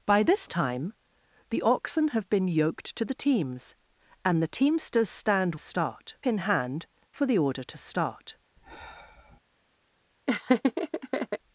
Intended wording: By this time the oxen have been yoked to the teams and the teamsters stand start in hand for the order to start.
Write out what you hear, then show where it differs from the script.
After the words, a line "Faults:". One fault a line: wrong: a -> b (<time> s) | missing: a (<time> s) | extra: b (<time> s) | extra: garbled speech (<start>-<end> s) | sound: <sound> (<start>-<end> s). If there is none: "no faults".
By this time the oxen have been yoked to the teams and the teamsters stand start in hand for the order to start.
Faults:
sound: sigh (8.6-9.4 s)
sound: laugh (10.3-11.4 s)